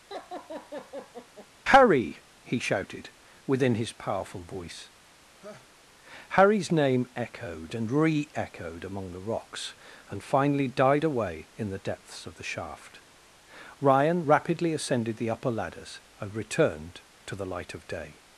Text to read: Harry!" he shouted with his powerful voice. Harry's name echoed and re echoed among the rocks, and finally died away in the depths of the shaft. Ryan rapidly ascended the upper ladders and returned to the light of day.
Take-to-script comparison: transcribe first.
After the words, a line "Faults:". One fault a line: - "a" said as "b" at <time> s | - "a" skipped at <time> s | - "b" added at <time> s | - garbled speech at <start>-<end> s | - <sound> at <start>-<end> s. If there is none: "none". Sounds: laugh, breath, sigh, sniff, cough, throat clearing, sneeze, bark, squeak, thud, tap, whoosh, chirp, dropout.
Harry!" he shouted within his powerful voice. Harry's name echoed and re echoed among the rocks, and finally died away in the depths of the shaft. Ryan rapidly ascended the upper ladders and returned to the light of day.
Faults:
- laugh at 0.1-1.5 s
- "with" said as "within" at 3.4 s
- laugh at 5.4-5.7 s